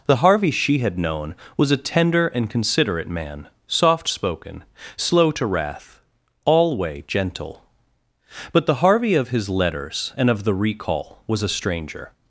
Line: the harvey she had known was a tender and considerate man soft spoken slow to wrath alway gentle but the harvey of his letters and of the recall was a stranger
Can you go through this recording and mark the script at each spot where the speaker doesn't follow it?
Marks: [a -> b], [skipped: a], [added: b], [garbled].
the harvey she had known was a tender and considerate man soft spoken slow to wrath alway gentle but the harvey of his letters and of the recall was a stranger